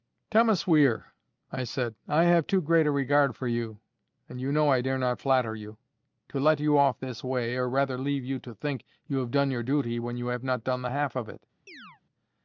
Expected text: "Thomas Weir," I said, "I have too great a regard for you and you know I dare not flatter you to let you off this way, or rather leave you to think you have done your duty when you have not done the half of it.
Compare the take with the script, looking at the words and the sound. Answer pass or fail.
fail